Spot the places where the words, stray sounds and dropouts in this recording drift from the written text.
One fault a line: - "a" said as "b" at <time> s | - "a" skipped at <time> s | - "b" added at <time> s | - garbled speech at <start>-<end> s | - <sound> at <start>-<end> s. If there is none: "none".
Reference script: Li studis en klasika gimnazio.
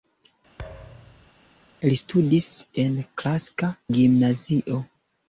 - thud at 0.6-1.3 s